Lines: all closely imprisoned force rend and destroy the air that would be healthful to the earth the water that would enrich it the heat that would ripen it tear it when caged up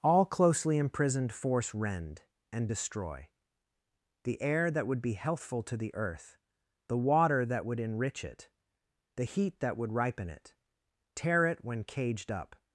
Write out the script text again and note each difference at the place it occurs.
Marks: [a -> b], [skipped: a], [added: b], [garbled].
all closely imprisoned force rend and destroy the air that would be healthful to the earth the water that would enrich it the heat that would ripen it tear it when caged up